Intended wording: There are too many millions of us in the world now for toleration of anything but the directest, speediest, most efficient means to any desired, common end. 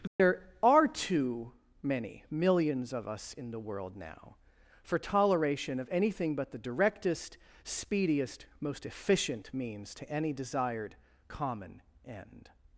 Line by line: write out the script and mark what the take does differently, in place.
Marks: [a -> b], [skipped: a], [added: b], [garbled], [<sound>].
There [dropout] are too many millions of us in the world now for toleration of anything but the directest, speediest, most efficient means to any desired, common end.